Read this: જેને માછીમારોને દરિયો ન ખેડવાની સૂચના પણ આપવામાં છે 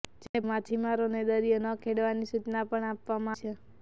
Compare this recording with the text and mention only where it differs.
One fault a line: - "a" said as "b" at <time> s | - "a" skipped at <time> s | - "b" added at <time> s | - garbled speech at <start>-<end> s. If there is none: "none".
none